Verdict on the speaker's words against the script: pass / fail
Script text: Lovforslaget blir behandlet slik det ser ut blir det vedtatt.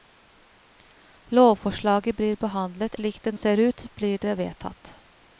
pass